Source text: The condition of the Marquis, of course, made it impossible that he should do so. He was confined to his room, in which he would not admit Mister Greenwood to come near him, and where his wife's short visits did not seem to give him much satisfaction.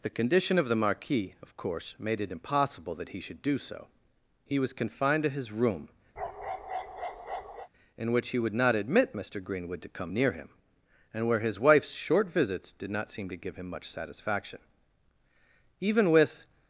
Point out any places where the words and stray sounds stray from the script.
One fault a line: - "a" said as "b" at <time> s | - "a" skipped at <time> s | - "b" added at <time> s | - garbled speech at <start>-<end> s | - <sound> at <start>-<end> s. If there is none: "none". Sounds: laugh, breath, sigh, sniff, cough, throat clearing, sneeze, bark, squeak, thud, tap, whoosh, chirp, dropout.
- bark at 6.2-7.7 s
- "Even with" added at 15.8 s